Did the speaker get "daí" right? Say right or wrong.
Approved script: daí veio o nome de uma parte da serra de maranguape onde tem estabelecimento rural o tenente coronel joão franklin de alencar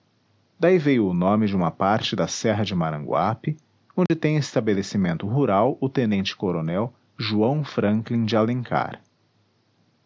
right